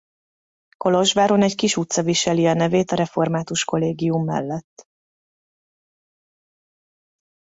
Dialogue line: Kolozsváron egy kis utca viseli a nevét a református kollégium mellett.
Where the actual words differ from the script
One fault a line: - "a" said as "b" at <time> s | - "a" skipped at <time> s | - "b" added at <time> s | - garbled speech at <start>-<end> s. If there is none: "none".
none